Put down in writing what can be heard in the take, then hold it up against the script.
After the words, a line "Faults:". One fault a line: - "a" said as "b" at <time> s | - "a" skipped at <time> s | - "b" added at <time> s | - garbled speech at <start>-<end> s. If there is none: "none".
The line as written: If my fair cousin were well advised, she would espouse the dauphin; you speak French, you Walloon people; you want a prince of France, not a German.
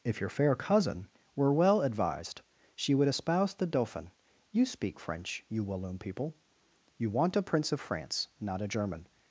If your fair cousin were well advised, she would espouse the dauphin; you speak French, you Walloon people; you want a prince of France, not a German.
Faults:
- "my" said as "your" at 0.2 s